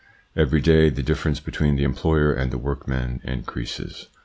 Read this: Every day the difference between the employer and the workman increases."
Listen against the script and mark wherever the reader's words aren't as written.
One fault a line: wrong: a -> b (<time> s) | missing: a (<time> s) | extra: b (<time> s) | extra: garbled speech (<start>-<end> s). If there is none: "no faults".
no faults